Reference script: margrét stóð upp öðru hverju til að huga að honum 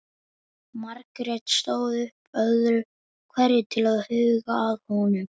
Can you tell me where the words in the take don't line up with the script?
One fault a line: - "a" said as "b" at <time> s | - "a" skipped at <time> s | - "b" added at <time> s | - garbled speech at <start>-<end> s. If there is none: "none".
none